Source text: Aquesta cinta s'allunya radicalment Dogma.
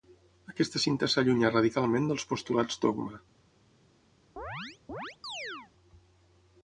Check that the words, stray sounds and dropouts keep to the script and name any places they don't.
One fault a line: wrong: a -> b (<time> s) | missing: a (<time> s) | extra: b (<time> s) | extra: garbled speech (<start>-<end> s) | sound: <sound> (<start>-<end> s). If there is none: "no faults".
extra: dels postulats (2.1 s)
sound: chirp (4.4-5.7 s)